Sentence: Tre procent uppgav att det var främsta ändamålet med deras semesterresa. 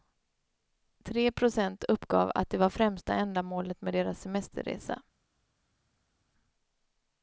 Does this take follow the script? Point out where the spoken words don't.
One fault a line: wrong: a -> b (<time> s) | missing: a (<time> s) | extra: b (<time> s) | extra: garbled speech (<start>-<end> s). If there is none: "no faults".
no faults